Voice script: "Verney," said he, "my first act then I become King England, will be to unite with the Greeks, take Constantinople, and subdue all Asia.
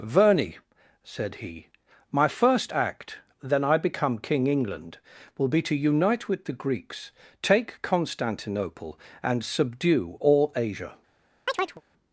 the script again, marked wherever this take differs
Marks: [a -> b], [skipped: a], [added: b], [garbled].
"Verney," said he, "my first act then I become King England, will be to unite with the Greeks, take Constantinople, and subdue all Asia.